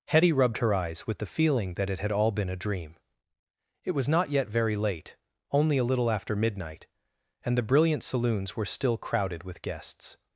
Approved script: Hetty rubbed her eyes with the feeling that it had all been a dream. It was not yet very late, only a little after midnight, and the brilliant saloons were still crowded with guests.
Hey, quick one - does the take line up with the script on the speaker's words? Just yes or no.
yes